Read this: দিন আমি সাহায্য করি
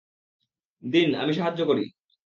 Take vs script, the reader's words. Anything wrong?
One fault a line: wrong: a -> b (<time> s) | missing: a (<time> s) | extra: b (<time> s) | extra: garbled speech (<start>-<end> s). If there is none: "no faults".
no faults